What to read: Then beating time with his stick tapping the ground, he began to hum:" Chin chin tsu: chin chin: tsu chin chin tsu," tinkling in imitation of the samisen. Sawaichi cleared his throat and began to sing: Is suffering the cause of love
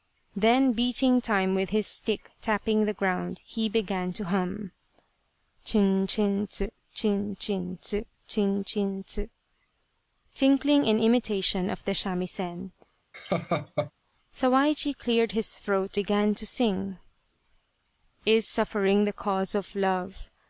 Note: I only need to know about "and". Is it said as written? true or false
false